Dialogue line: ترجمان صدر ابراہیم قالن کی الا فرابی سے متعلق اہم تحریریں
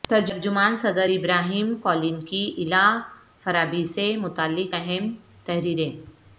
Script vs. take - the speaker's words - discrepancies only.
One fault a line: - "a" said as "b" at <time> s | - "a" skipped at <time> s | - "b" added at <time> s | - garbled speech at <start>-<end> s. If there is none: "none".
none